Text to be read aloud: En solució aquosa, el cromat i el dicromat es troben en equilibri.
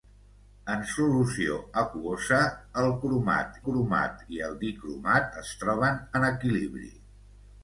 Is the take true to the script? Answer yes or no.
no